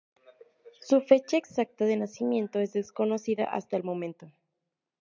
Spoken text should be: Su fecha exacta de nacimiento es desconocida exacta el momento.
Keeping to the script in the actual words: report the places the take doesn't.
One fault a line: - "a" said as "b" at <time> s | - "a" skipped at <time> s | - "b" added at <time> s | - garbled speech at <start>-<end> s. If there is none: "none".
- "exacta" said as "hasta" at 3.4 s